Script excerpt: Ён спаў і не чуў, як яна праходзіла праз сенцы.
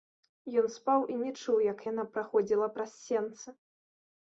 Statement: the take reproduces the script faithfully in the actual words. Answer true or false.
true